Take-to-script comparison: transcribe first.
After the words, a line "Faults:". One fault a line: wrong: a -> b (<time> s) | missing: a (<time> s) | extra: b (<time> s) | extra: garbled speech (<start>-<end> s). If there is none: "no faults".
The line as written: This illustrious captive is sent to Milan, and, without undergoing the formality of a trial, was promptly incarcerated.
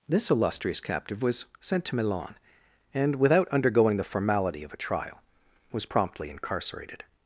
This illustrious captive was sent to Milan, and, without undergoing the formality of a trial, was promptly incarcerated.
Faults:
wrong: is -> was (1.2 s)